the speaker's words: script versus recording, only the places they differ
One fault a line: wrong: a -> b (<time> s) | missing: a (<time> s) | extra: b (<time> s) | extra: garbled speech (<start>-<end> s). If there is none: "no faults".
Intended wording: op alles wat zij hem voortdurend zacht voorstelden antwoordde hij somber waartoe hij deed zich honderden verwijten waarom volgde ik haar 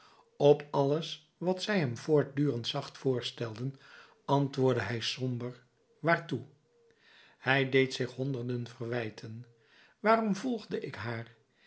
no faults